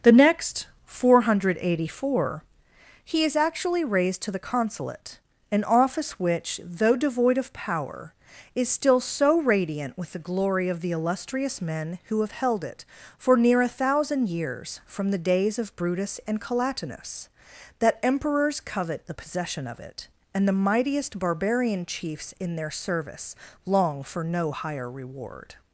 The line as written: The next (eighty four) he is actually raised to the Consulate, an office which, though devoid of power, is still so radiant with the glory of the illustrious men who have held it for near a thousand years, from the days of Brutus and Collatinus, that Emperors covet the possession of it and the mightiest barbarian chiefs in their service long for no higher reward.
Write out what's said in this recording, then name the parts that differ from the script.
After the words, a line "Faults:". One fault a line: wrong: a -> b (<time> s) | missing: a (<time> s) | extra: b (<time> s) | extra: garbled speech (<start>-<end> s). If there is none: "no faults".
The next (four hundred eighty four) he is actually raised to the Consulate, an office which, though devoid of power, is still so radiant with the glory of the illustrious men who have held it for near a thousand years, from the days of Brutus and Collatinus, that Emperors covet the possession of it and the mightiest barbarian chiefs in their service long for no higher reward.
Faults:
extra: four hundred (0.8 s)